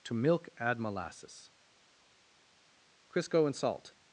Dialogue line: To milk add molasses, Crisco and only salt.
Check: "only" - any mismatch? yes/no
yes